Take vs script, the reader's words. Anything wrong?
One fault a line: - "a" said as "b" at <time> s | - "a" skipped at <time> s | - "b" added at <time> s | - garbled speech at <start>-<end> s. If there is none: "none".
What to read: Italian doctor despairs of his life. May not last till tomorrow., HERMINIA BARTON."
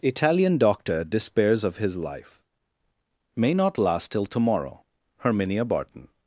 none